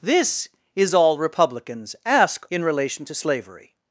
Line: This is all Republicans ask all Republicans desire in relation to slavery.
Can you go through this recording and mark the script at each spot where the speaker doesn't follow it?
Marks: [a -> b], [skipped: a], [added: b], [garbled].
This is all Republicans ask [skipped: all Republicans desire] in relation to slavery.